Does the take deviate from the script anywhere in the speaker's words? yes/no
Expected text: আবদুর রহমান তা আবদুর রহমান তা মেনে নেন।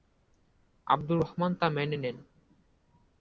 yes